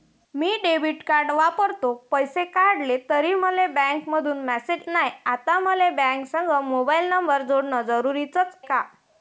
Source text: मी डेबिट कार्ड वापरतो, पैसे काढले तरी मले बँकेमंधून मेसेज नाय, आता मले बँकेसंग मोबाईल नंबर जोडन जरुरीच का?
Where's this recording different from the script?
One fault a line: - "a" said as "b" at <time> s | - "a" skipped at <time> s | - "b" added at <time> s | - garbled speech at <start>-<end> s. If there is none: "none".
none